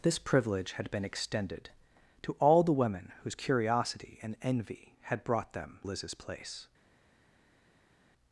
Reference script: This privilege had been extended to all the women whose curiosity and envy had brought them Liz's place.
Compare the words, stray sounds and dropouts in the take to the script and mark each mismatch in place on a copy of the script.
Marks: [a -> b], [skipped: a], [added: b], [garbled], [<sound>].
This privilege had been extended to all the women whose curiosity and envy had brought them Liz's place.